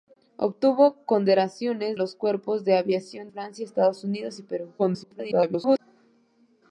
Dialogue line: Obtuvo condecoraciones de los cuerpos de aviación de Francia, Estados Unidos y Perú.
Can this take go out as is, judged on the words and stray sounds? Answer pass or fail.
fail